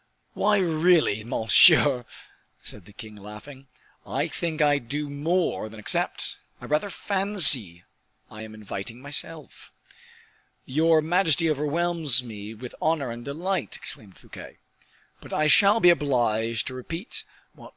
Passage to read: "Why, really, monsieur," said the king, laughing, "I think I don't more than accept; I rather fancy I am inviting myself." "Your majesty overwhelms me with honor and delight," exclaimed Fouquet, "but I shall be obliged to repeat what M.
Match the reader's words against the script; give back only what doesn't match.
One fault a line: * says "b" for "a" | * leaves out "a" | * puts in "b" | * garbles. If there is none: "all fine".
* says "do" for "don't"